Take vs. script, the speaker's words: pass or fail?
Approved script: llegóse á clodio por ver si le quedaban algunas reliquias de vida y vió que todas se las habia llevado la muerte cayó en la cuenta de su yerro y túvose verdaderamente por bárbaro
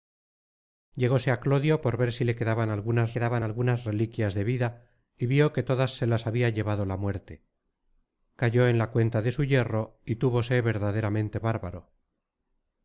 fail